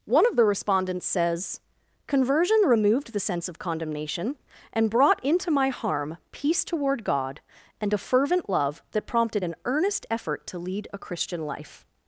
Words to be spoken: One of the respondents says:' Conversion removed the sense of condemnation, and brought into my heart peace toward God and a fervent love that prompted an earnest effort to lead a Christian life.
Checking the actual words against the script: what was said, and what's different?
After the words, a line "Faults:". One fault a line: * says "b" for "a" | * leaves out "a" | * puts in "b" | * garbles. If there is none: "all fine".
One of the respondents says:' Conversion removed the sense of condemnation, and brought into my harm peace toward God and a fervent love that prompted an earnest effort to lead a Christian life.
Faults:
* says "harm" for "heart"